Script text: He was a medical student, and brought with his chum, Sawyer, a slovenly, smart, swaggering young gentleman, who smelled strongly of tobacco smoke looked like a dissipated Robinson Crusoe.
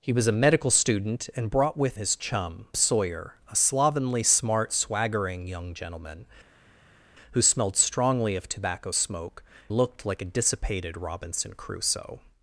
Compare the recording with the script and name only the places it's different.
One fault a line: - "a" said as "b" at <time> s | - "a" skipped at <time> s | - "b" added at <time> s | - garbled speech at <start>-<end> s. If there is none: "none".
none